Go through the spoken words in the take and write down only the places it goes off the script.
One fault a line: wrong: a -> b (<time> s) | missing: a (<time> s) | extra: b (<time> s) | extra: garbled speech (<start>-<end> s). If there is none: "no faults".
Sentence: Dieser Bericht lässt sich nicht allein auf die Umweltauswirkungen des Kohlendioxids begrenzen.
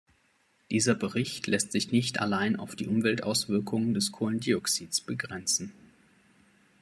no faults